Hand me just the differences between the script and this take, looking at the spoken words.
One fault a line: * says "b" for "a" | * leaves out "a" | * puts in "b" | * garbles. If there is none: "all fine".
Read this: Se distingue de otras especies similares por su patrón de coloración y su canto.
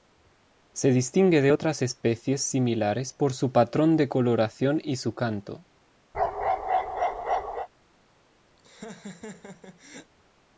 all fine